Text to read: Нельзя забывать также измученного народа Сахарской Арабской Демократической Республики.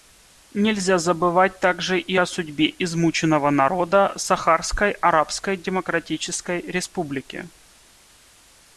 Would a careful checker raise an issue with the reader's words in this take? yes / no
yes